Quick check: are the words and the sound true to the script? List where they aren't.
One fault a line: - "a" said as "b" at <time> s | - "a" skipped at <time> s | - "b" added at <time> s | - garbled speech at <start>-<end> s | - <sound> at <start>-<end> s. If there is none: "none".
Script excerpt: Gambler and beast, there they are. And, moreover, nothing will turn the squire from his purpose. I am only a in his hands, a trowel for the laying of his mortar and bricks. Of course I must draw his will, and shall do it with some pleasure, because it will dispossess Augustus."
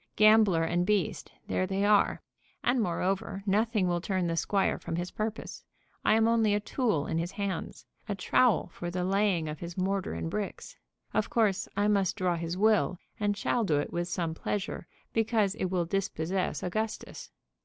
- "tool" added at 6.6 s